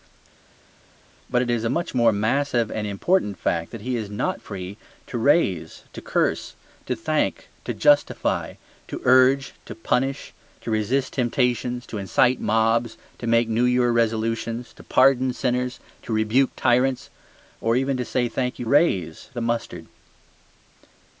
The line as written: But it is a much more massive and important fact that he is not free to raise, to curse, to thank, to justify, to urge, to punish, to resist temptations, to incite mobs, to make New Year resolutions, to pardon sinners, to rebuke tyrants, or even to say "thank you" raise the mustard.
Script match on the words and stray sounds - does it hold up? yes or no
yes